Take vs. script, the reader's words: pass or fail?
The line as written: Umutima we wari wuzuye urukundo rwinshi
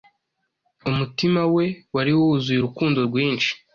pass